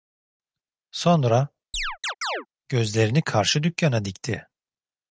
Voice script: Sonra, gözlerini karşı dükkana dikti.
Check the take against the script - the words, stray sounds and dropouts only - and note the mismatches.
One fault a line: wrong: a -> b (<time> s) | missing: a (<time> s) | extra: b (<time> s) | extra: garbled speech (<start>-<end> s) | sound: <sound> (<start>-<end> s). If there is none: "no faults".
sound: chirp (1.7-2.5 s)